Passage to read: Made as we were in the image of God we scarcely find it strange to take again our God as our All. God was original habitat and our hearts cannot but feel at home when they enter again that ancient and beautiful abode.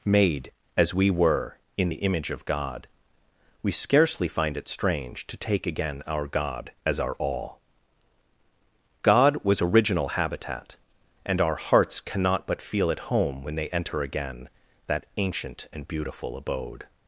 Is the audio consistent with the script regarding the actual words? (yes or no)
yes